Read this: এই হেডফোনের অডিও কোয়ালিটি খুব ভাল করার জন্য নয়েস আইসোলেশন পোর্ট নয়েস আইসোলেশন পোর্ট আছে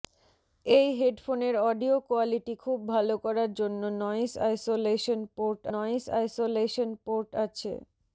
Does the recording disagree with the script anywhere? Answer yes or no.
no